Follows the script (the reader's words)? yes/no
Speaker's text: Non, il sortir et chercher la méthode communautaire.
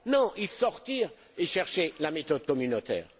yes